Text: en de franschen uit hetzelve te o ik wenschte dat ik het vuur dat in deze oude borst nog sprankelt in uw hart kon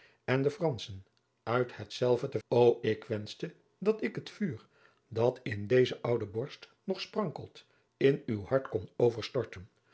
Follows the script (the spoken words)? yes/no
yes